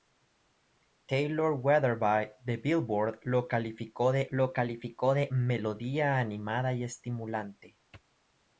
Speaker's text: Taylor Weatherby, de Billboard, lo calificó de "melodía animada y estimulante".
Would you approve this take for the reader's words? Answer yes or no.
no